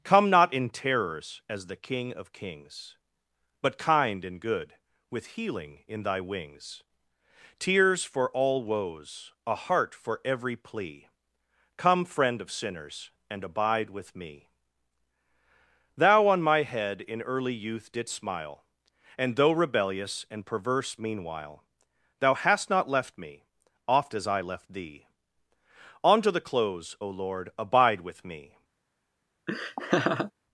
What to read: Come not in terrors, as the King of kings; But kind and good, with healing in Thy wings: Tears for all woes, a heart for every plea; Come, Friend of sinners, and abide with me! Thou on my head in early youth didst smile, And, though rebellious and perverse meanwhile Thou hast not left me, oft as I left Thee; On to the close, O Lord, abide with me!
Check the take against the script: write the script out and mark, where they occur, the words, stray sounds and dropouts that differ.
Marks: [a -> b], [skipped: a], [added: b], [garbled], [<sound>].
Come not in terrors, as the King of kings; But kind and good, with healing in Thy wings: Tears for all woes, a heart for every plea; Come, Friend of sinners, and abide with me! Thou on my head in early youth didst smile, And, though rebellious and perverse meanwhile Thou hast not left me, oft as I left Thee; On to the close, O Lord, abide with me! [laugh]